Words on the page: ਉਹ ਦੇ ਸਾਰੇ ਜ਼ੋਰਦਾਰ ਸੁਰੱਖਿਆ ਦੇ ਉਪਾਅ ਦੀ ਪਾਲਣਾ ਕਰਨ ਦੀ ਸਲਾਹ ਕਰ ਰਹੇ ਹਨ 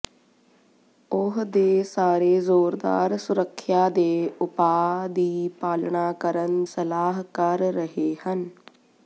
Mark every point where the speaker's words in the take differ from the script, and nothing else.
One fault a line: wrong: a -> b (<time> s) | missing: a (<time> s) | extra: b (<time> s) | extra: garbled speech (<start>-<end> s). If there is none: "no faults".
missing: ਦੀ (6.7 s)